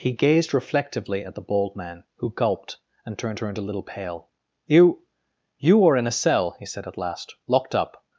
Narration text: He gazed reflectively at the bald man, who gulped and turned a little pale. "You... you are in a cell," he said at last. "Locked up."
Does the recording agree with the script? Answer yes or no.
no